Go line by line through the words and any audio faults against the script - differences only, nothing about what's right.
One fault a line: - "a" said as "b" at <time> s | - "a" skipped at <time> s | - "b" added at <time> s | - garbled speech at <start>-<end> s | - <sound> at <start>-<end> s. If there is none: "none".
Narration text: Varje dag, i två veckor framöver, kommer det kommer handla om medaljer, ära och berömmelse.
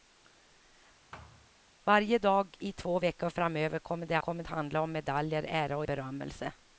- thud at 1.1-1.5 s